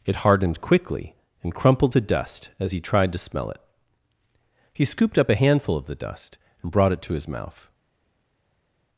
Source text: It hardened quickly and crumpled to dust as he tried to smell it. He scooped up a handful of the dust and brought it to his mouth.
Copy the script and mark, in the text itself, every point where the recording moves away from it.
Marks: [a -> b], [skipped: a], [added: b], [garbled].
It hardened quickly and crumpled to dust as he tried to smell it. He scooped up a handful of the dust and brought it to his mouth.